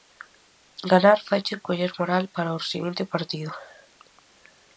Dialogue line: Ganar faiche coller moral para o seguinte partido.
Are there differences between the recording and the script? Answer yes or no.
no